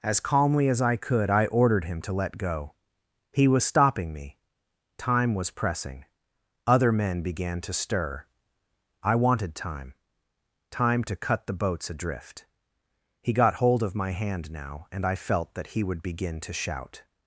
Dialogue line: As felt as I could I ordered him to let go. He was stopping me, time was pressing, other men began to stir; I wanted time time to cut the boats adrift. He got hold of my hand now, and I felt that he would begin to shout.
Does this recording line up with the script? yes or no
no